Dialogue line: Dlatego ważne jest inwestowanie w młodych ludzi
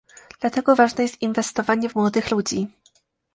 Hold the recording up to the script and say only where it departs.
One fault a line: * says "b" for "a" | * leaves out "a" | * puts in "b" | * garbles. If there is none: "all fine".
all fine